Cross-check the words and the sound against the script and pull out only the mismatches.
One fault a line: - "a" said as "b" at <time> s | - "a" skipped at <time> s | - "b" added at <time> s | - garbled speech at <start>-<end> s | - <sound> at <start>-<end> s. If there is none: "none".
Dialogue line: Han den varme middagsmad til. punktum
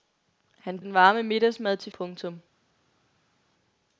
none